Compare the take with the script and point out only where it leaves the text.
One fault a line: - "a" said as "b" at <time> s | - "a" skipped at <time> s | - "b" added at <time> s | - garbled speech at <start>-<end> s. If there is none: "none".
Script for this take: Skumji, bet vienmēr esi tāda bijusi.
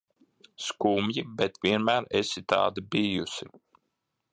none